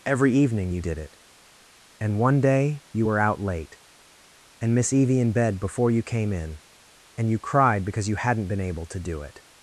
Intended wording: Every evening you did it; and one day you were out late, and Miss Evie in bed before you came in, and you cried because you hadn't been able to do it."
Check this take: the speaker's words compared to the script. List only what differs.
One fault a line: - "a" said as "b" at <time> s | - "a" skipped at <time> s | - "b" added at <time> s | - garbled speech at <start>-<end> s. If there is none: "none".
none